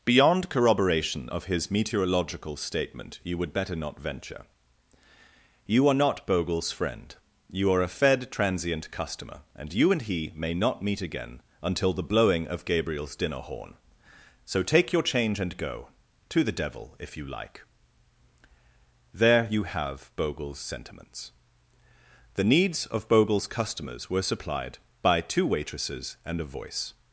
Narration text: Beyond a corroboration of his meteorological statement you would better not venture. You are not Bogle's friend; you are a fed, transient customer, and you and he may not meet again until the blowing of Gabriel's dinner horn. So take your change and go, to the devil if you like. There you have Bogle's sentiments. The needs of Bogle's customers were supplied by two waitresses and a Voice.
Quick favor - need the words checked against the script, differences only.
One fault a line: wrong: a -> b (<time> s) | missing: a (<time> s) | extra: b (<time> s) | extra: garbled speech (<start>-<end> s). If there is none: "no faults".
missing: a (0.5 s)